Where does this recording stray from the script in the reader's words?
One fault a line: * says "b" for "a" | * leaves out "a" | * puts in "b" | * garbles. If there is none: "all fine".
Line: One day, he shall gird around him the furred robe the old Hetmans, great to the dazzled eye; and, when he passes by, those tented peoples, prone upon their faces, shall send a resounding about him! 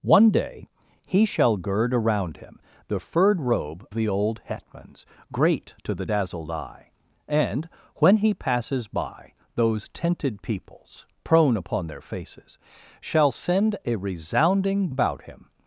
all fine